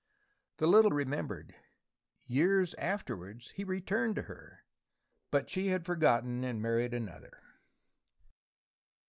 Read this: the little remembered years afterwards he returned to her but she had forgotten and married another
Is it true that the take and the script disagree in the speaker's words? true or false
false